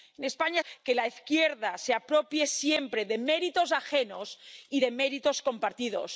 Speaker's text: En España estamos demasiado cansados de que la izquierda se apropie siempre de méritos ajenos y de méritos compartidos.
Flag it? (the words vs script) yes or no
yes